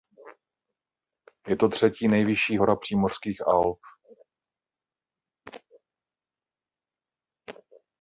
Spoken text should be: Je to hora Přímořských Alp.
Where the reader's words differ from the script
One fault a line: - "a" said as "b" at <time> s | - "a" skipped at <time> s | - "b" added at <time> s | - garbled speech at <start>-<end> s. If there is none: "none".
- "třetí nejvyšší" added at 1.7 s